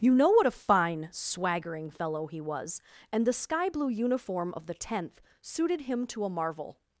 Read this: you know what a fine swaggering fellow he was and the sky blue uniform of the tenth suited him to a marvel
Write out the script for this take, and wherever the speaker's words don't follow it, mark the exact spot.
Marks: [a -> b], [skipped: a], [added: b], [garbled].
you know what a fine swaggering fellow he was and the sky blue uniform of the tenth suited him to a marvel